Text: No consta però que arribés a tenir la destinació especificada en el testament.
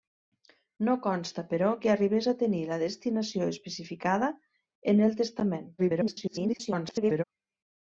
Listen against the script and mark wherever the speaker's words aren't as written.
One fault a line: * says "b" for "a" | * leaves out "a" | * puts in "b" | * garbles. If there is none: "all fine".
* garbles